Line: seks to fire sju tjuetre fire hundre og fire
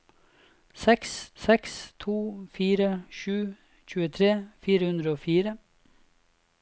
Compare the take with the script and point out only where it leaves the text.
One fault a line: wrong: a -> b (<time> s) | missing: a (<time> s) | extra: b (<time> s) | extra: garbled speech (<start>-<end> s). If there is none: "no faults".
extra: seks (1.4 s)